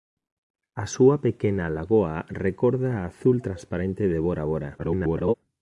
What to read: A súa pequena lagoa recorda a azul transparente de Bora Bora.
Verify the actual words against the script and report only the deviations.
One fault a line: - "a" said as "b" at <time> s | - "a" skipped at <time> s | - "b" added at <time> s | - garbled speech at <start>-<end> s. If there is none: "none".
- garbled speech at 4.8-5.3 s